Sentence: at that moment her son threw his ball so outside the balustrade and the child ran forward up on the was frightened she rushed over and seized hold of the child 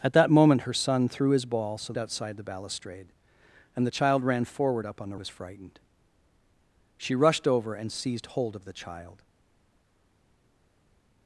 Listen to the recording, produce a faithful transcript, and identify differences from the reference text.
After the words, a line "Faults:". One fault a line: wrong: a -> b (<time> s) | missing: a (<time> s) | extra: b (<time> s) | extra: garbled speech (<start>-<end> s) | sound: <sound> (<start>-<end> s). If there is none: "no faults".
at that moment her son threw his ball so outside the balustrade and the child ran forward up on the was frightened she rushed over and seized hold of the child
Faults:
no faults